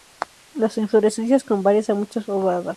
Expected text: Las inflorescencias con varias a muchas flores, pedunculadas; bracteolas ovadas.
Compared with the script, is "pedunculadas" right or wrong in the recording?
wrong